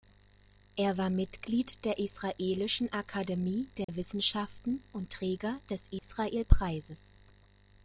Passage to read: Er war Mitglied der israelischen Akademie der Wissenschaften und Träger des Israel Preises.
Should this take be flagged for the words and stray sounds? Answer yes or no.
yes